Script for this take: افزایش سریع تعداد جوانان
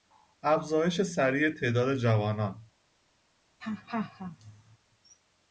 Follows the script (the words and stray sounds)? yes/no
no